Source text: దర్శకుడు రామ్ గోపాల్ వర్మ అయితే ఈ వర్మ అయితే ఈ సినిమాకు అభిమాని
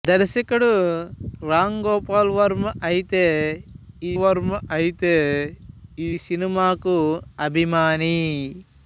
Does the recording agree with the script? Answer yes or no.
yes